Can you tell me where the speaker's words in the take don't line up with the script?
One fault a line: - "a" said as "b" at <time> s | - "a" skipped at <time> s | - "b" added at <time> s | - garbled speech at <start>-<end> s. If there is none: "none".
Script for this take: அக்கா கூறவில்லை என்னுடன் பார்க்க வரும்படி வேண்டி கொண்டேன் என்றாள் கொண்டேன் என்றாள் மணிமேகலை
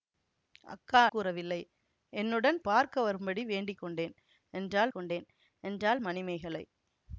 none